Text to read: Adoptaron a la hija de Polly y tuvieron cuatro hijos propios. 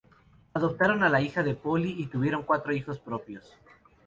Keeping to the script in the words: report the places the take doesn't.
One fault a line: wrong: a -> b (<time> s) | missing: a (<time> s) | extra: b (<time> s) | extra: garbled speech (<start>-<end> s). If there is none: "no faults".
no faults